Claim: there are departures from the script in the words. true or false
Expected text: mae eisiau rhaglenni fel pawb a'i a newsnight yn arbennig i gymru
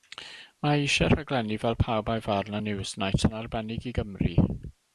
true